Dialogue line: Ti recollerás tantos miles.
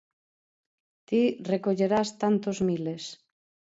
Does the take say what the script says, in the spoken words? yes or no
yes